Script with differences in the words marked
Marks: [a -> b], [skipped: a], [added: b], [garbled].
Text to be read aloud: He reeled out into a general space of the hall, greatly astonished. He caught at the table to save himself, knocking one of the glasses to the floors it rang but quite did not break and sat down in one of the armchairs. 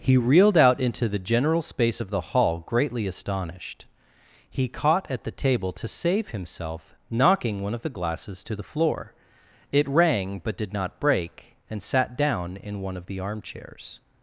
He reeled out into [a -> the] general space of the hall, greatly astonished. He caught at the table to save himself, knocking one of the glasses to the [floors -> floor] it rang but [skipped: quite] did not break and sat down in one of the armchairs.